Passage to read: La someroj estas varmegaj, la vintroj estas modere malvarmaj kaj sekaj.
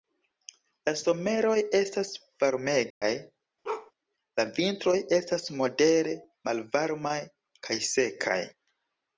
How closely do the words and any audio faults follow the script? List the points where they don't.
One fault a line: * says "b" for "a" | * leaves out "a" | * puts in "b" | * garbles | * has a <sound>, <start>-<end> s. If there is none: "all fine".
* has a dropout, 2.9-3.0 s
* has a bark, 3.6-3.9 s